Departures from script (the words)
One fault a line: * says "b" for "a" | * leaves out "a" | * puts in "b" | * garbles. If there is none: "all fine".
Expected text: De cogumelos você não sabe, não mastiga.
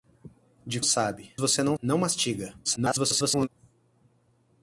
* says "sabe" for "cogumelos"
* leaves out "sabe"
* garbles